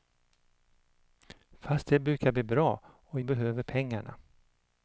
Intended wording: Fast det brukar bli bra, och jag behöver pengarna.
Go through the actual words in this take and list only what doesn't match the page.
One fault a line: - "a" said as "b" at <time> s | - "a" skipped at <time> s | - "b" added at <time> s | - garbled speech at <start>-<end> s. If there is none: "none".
- "jag" skipped at 3.2 s